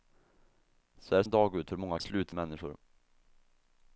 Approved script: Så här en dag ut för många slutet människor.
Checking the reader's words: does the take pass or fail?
pass